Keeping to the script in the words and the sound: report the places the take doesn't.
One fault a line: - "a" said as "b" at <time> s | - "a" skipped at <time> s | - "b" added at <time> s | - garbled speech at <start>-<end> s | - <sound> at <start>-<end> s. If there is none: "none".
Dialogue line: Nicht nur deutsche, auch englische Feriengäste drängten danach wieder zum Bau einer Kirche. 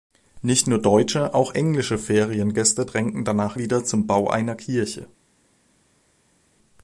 none